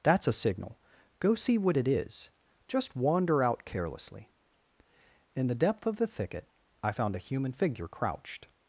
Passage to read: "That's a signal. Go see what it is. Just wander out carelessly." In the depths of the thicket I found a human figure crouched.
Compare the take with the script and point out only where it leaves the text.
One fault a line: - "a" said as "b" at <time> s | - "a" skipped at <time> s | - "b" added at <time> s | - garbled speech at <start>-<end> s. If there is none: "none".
- "depths" said as "depth" at 5.5 s